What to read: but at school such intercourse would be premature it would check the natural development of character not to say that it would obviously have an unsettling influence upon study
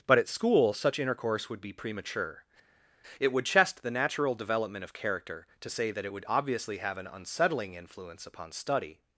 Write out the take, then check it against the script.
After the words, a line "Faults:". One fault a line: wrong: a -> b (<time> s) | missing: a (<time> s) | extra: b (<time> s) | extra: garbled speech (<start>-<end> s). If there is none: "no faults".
but at school such intercourse would be premature it would chest the natural development of character to say that it would obviously have an unsettling influence upon study
Faults:
wrong: check -> chest (3.4 s)
missing: not (5.5 s)